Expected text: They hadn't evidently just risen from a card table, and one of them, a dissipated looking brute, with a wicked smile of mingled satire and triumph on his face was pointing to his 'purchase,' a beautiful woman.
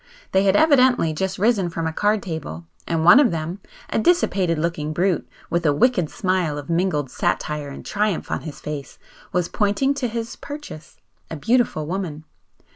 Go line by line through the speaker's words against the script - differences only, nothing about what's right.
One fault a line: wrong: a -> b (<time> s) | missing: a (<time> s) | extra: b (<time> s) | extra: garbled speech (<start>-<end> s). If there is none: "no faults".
wrong: hadn't -> had (0.5 s)